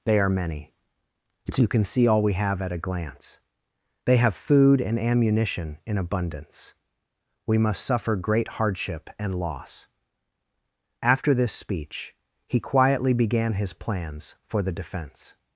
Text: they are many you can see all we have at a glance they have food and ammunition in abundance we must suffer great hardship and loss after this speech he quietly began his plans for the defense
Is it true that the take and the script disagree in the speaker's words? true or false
false